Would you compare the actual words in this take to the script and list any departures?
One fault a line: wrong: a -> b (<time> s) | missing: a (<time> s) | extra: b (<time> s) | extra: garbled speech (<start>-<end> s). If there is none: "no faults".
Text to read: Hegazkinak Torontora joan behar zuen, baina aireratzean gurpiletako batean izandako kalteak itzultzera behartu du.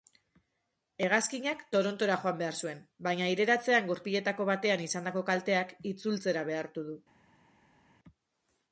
no faults